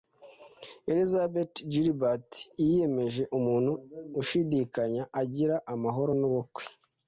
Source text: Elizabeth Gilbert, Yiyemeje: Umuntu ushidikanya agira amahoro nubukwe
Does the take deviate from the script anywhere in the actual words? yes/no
no